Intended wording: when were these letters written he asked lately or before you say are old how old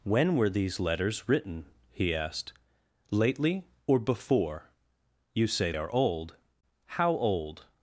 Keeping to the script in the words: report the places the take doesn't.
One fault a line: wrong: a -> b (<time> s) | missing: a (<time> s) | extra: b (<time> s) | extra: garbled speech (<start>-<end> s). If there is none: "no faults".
no faults